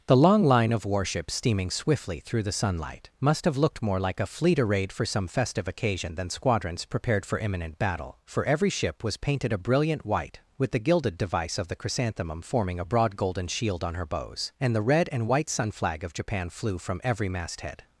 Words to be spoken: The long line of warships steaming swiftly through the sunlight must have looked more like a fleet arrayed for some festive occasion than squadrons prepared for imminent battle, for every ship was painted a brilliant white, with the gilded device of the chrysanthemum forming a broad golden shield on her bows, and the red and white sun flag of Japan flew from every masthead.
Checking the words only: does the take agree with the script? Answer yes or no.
yes